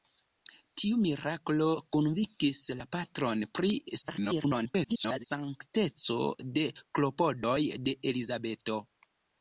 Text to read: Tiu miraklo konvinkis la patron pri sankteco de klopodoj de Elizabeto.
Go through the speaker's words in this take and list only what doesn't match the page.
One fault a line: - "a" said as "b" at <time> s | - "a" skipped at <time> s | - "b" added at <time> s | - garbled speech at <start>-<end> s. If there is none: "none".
- garbled speech at 4.0-5.3 s